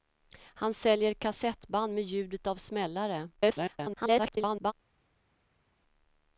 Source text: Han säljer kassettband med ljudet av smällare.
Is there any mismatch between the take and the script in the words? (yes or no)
yes